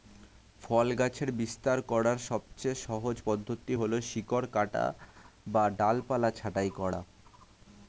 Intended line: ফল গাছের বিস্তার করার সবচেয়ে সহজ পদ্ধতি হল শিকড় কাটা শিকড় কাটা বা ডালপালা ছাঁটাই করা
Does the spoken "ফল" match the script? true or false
true